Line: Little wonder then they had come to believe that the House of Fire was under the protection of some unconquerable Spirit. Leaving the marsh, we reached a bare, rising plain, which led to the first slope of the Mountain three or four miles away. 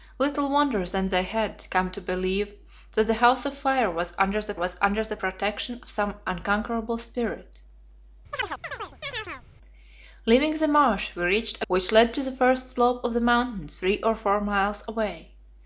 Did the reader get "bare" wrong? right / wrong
wrong